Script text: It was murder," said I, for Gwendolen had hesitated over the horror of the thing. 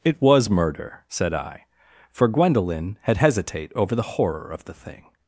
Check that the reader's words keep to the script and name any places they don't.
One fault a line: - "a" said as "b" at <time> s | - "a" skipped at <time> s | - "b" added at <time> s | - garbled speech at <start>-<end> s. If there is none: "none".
- "hesitated" said as "hesitate" at 3.2 s